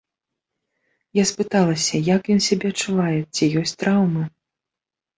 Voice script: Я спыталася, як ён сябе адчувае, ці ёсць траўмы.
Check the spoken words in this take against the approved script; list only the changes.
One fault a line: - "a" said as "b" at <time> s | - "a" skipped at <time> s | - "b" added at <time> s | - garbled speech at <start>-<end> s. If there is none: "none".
none